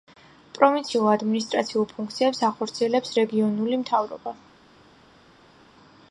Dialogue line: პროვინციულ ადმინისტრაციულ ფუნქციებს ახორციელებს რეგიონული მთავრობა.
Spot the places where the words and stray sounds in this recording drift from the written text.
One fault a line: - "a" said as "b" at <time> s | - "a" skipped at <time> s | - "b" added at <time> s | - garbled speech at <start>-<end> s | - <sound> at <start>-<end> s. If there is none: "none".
none